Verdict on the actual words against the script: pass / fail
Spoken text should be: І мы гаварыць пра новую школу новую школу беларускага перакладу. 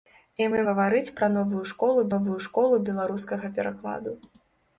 pass